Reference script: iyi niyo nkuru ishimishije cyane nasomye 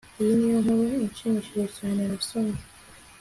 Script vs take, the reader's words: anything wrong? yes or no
no